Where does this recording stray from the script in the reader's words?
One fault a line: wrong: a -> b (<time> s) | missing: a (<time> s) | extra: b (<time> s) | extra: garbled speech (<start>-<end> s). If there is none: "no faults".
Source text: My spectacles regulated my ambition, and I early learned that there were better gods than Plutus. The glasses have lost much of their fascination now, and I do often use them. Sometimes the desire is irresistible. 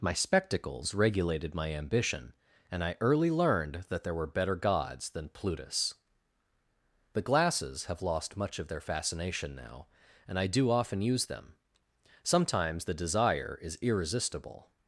no faults